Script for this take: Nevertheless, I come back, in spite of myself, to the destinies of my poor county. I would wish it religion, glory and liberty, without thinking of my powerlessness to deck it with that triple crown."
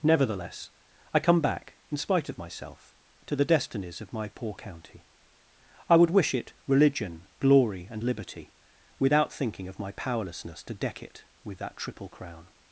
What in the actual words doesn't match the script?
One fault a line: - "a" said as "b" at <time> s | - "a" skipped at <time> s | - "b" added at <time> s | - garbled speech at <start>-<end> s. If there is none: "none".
none